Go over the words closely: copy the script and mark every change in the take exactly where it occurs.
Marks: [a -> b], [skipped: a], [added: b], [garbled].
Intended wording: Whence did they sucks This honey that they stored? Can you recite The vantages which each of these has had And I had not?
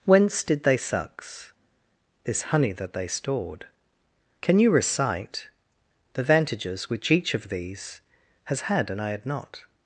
Whence did they sucks This honey that they stored? Can you recite The vantages which each of these has had And I had not?